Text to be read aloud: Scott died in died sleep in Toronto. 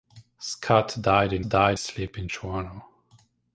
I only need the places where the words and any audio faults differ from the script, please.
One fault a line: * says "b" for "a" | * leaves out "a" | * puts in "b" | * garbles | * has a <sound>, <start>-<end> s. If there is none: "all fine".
all fine